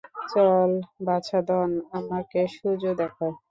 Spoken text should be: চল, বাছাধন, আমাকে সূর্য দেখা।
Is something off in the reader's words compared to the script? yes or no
no